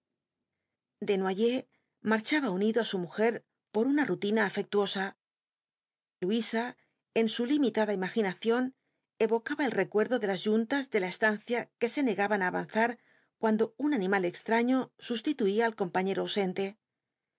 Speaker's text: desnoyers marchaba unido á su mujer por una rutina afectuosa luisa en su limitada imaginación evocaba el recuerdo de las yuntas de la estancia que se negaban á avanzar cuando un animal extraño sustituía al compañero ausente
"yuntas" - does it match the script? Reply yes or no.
yes